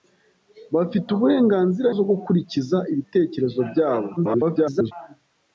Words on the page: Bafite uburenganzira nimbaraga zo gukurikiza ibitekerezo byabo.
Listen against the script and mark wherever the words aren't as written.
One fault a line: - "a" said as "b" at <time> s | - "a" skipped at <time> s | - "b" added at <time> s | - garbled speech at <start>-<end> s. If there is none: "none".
- "nimbaraga" skipped at 1.9 s
- garbled speech at 4.2-4.9 s